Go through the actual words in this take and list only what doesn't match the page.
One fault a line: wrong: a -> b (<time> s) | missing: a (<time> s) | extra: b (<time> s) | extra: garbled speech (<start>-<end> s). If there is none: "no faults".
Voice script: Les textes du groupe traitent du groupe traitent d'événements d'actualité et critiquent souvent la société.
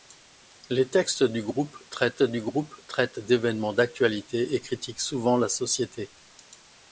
no faults